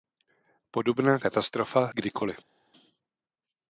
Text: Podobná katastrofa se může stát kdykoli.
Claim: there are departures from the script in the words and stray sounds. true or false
true